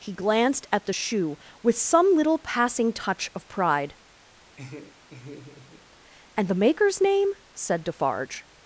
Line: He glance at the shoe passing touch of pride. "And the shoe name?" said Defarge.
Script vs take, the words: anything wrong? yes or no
yes